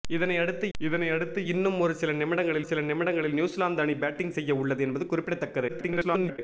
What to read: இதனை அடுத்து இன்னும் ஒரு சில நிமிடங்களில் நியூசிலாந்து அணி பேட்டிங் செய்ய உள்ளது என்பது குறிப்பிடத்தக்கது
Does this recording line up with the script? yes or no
no